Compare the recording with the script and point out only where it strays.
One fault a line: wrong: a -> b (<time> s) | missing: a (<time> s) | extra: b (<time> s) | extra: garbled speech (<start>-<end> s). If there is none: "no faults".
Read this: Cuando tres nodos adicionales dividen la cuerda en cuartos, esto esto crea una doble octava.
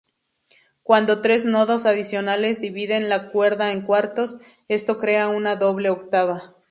missing: esto (5.0 s)